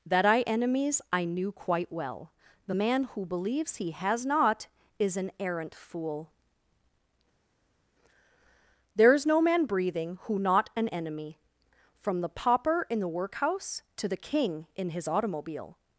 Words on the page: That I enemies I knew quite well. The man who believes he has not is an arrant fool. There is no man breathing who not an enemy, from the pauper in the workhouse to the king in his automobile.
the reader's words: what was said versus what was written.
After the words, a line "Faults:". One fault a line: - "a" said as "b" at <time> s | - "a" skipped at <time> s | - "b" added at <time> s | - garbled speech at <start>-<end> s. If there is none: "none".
That I enemies I knew quite well. The man who believes he has not is an arrant fool. There is no man breathing who not an enemy, from the pauper in the workhouse to the king in his automobile.
Faults:
none